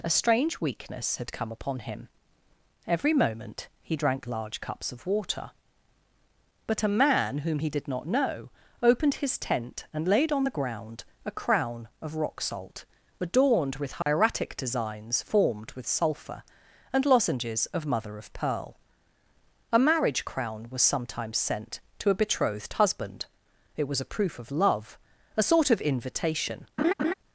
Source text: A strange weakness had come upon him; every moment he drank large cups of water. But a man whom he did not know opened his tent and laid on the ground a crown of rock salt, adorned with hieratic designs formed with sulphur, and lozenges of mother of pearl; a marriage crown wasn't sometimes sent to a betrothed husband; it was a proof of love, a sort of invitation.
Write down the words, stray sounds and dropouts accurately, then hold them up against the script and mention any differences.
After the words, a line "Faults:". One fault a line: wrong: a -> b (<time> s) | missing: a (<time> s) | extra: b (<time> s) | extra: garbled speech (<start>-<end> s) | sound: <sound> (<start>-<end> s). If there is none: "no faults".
A strange weakness had come upon him; every moment he drank large cups of water. But a man whom he did not know opened his tent and laid on the ground a crown of rock salt, adorned with hieratic designs formed with sulphur, and lozenges of mother of pearl; a marriage crown was sometimes sent to a betrothed husband; it was a proof of love, a sort of invitation.
Faults:
sound: dropout (14.0-14.1 s)
wrong: wasn't -> was (20.7 s)
sound: laugh (26.8-27.1 s)